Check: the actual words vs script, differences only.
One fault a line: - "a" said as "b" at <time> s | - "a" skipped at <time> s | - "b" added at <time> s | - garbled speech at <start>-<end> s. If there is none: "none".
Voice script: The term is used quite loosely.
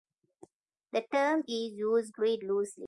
none